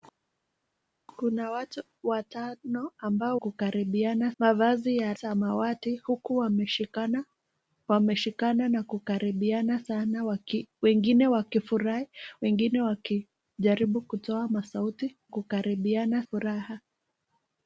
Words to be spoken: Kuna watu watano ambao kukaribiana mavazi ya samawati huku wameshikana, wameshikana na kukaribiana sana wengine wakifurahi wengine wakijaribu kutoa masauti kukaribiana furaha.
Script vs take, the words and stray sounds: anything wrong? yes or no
no